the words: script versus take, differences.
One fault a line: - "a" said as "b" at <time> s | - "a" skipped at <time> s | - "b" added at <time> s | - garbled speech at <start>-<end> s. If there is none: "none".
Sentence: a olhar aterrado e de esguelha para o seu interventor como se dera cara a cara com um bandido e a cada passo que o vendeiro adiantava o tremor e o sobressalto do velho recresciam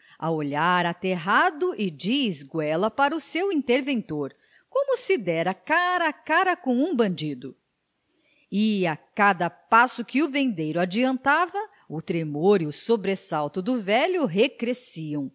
none